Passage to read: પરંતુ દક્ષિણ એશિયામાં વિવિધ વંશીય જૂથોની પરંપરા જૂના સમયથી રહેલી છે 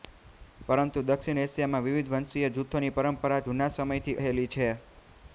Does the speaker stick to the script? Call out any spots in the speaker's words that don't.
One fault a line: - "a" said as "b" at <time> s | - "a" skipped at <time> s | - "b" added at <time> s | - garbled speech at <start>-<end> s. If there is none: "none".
none